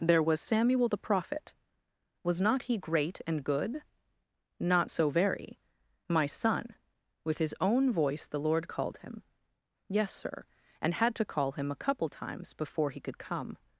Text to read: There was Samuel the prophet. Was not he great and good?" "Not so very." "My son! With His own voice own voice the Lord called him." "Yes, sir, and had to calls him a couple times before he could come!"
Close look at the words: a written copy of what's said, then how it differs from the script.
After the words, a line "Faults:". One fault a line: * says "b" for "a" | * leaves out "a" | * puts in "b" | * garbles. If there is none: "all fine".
There was Samuel the prophet. Was not he great and good?" "Not so very." "My son! With His own voice the Lord called him." "Yes, sir, and had to call him a couple times before he could come!"
Faults:
* leaves out "own voice"
* says "call" for "calls"